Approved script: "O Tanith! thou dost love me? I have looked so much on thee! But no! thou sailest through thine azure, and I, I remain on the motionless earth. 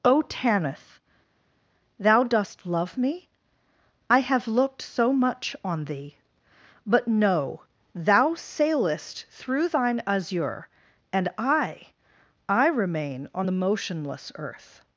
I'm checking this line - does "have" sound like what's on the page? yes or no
yes